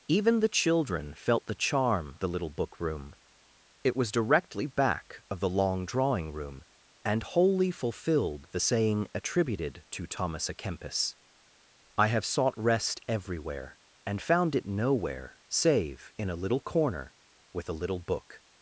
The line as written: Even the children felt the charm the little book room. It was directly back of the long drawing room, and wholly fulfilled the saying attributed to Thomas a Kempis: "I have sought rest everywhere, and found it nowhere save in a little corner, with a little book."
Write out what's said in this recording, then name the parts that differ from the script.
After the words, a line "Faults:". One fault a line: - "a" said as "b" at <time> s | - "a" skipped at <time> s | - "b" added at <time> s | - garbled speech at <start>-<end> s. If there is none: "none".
Even the children felt the charm the little book room. It was directly back of the long drawing room, and wholly fulfilled the saying attributed to Thomas a Kempis: "I have sought rest everywhere, and found it nowhere save in a little corner, with a little book."
Faults:
none